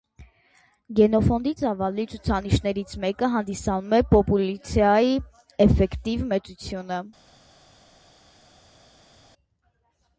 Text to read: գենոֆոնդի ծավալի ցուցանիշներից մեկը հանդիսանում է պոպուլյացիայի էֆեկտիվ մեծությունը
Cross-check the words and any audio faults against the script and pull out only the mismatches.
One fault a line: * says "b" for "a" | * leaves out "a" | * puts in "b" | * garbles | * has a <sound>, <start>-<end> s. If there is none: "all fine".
all fine